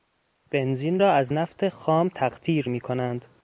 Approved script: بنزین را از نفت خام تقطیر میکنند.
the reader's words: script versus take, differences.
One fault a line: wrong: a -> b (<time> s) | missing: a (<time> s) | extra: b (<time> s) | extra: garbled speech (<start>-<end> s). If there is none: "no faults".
no faults